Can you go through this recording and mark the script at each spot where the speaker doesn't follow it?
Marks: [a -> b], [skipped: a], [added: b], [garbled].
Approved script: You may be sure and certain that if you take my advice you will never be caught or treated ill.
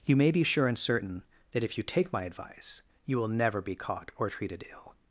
You may be sure and certain that if you take my advice you will never be caught or treated ill.